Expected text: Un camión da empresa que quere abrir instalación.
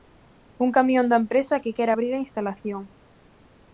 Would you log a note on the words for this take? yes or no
yes